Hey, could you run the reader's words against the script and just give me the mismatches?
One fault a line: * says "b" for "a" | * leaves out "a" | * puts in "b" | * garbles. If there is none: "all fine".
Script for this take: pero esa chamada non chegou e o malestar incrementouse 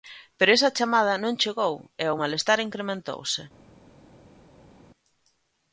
all fine